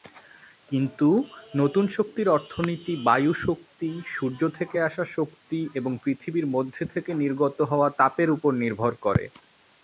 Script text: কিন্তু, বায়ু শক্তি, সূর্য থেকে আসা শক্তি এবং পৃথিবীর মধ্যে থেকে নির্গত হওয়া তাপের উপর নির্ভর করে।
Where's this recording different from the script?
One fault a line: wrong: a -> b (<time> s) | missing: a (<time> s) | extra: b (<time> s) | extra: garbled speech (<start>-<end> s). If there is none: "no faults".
extra: নতুন শক্তির অর্থনীতি (1.6 s)